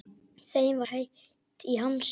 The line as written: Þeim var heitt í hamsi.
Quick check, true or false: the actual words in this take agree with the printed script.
false